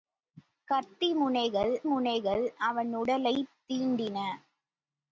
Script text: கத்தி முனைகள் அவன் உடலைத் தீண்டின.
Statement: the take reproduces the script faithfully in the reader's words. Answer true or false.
false